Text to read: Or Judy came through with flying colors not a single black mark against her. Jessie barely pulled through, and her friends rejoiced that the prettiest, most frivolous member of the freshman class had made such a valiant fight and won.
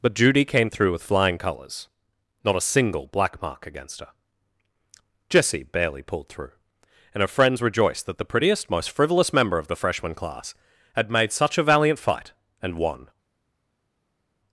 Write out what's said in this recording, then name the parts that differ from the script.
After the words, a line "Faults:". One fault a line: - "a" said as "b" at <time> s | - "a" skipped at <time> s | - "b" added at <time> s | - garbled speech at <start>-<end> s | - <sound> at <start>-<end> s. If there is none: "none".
But Judy came through with flying colors not a single black mark against her. Jessie barely pulled through, and her friends rejoiced that the prettiest, most frivolous member of the freshman class had made such a valiant fight and won.
Faults:
- "Or" said as "But" at 0.0 s